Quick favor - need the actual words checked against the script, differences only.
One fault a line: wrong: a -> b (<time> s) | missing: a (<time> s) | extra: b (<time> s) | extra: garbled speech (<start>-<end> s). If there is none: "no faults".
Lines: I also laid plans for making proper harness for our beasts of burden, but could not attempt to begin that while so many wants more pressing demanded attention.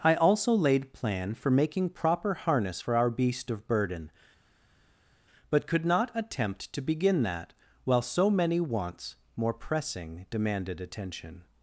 wrong: plans -> plan (0.9 s)
wrong: beasts -> beast (3.1 s)